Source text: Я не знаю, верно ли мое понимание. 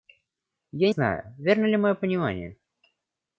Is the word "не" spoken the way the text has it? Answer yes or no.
no